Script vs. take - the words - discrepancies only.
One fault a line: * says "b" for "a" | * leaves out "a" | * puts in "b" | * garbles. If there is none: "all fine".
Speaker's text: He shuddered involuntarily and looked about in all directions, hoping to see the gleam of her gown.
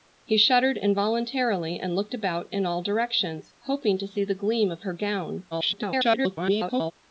* garbles